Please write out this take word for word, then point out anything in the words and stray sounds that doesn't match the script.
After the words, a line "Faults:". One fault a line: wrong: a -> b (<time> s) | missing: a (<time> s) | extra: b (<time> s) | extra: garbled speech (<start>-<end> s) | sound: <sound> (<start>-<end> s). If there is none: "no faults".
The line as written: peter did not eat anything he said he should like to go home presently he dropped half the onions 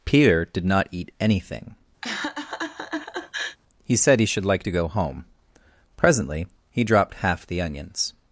peter did not eat anything he said he should like to go home presently he dropped half the onions
Faults:
sound: laugh (2.0-3.6 s)